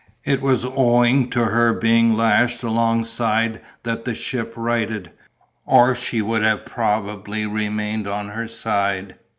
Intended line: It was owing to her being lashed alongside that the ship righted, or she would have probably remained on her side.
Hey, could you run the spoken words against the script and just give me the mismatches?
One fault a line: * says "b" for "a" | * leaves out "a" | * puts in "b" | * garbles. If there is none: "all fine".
all fine